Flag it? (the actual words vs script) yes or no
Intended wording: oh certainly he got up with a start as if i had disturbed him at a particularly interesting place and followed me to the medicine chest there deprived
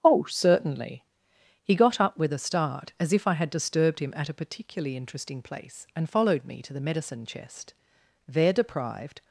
no